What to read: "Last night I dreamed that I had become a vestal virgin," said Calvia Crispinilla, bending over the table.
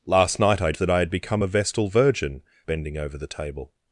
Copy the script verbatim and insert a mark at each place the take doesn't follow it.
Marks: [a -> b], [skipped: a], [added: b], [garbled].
"Last night I [skipped: dreamed] that I had become a vestal virgin," [skipped: said Calvia Crispinilla,] bending over the table.